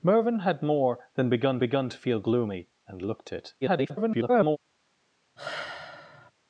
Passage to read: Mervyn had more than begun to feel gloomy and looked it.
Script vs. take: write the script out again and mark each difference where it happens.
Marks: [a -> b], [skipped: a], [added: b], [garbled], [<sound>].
Mervyn had more than begun [added: begun] to feel gloomy and looked it. [garbled] [sigh]